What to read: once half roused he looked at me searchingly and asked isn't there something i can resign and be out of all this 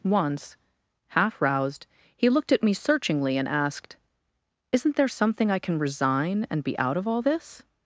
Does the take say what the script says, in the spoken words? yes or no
yes